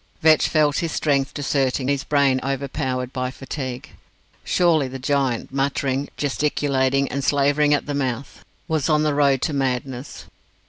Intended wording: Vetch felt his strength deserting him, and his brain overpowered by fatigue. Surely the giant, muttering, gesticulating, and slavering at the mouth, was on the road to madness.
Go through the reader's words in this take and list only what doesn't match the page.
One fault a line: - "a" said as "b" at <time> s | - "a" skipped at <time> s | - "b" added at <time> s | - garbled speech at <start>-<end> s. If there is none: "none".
- "him and" skipped at 1.9 s